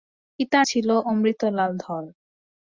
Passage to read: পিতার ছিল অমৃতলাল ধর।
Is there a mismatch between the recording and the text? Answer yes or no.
no